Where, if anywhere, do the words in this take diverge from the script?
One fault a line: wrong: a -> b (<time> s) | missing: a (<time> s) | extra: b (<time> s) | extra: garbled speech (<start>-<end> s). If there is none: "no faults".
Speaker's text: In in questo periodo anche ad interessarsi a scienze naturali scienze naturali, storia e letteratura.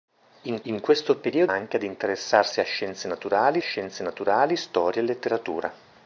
no faults